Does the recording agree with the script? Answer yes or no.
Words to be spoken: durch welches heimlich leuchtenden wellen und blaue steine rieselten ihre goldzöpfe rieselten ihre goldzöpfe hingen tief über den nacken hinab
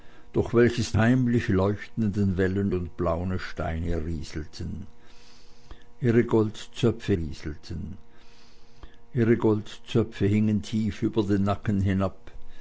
yes